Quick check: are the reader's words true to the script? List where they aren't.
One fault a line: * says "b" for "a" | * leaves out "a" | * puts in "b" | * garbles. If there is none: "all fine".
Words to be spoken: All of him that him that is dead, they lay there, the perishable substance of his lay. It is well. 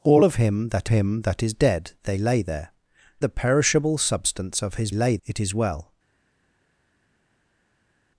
all fine